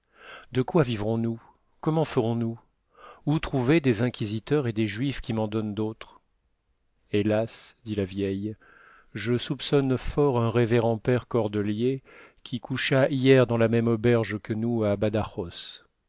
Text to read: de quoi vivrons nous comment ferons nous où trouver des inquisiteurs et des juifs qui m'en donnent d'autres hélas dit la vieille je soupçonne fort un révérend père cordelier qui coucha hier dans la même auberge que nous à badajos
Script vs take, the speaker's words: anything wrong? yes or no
no